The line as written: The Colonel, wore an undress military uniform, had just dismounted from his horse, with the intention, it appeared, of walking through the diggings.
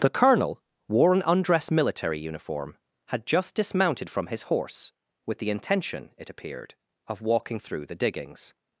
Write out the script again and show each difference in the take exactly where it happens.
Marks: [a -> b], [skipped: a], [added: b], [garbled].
The Colonel, wore an undress military uniform, had just dismounted from his horse, with the intention, it appeared, of walking through the diggings.